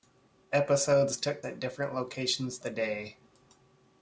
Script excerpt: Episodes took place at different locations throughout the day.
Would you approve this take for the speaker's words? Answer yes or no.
no